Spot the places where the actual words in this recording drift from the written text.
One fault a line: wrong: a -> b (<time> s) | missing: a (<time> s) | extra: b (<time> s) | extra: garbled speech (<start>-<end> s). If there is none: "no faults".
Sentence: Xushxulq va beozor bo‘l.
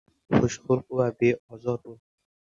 no faults